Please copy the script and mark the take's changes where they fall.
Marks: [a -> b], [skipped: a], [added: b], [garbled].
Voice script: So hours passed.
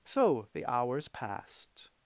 So [added: the] hours passed.